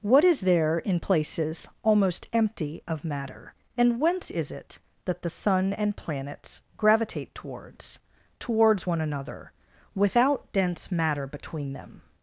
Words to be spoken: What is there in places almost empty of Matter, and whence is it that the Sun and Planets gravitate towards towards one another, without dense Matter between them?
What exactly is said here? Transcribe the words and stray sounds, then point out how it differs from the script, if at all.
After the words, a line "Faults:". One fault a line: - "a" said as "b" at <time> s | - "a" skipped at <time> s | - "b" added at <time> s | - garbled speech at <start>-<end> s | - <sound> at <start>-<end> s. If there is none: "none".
What is there in places almost empty of Matter, and whence is it that the Sun and Planets gravitate towards towards one another, without dense Matter between them?
Faults:
none